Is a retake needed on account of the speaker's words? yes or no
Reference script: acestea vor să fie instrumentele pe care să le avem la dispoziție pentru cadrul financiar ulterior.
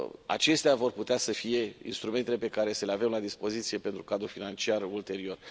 yes